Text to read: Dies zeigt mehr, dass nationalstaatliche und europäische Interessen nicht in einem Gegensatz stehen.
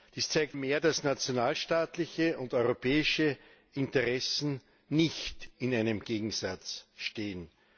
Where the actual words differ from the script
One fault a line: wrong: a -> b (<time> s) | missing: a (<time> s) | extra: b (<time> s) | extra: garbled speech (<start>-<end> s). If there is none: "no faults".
no faults